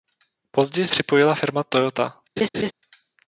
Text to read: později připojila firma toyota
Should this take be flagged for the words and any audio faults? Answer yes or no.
yes